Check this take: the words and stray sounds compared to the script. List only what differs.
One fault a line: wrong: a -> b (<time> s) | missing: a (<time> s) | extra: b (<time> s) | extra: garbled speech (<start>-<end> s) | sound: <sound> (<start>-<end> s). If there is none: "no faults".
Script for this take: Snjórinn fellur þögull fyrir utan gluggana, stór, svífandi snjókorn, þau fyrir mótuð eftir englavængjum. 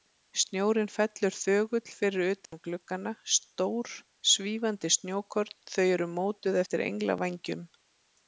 sound: dropout (2.5-2.5 s)
wrong: fyrir -> eru (6.0 s)